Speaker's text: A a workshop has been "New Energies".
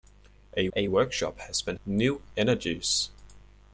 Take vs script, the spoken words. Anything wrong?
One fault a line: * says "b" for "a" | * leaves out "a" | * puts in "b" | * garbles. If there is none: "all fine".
all fine